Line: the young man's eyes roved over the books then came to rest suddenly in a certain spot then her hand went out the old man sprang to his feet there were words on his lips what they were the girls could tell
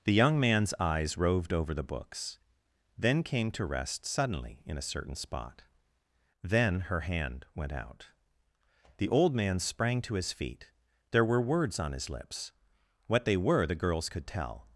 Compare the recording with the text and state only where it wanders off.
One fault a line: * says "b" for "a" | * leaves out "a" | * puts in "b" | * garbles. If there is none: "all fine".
all fine